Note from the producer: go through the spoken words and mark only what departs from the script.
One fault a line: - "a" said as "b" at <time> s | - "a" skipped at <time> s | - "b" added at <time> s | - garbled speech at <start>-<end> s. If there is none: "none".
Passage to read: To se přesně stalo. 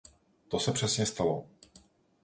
none